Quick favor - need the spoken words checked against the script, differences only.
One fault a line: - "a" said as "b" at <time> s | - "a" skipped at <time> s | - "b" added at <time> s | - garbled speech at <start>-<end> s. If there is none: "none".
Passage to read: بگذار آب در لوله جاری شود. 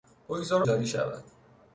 - "آب در لوله" skipped at 0.6 s